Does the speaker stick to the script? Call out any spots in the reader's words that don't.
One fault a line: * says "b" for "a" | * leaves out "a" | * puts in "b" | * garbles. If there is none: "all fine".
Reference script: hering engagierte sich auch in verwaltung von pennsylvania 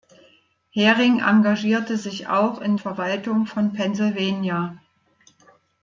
all fine